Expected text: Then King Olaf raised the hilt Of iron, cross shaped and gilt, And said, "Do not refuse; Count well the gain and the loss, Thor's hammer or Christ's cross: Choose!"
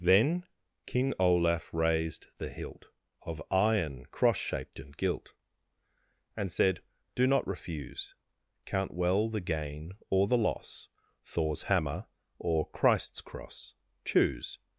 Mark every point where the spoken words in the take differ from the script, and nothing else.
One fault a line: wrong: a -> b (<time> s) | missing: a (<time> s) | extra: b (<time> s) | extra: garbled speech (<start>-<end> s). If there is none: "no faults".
wrong: and -> or (10.1 s)